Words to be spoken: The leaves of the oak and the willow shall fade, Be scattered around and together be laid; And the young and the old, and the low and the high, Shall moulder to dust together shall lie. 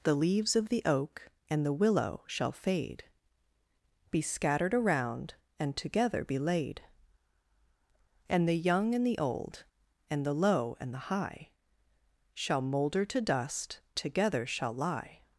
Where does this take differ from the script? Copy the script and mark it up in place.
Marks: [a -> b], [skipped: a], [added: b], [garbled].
The leaves of the oak and the willow shall fade, Be scattered around and together be laid; And the young and the old, and the low and the high, Shall moulder to dust together shall lie.